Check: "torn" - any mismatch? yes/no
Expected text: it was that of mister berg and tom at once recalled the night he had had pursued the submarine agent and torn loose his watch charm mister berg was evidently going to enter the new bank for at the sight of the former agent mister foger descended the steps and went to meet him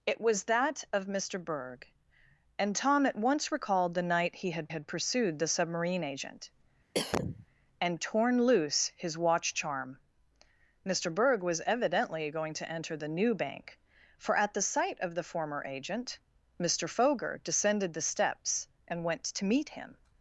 no